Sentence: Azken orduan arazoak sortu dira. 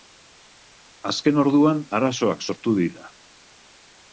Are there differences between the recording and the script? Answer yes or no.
no